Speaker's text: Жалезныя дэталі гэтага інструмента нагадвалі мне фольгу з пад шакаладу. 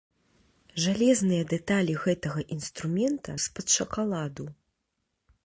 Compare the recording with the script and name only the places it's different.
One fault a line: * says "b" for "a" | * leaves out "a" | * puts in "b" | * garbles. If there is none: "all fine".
* leaves out "нагадвалі мне фольгу"